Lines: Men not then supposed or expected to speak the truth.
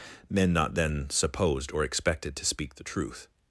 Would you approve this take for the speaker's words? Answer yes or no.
yes